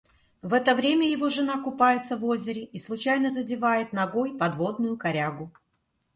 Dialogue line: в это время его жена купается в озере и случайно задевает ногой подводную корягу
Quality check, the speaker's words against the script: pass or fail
pass